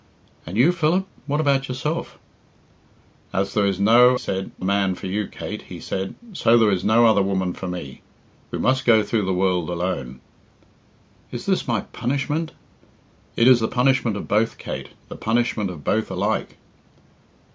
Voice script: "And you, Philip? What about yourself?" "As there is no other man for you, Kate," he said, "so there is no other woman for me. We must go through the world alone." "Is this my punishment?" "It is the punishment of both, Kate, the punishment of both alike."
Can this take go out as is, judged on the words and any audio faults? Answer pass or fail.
fail